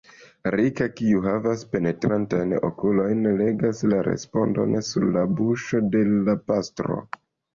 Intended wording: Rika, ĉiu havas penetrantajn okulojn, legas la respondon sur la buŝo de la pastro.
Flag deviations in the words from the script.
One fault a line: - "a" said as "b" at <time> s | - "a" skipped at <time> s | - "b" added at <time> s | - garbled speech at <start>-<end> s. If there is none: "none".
- "ĉiu" said as "kiu" at 1.0 s